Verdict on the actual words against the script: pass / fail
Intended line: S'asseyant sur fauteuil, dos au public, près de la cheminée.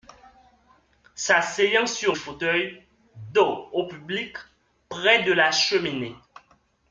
pass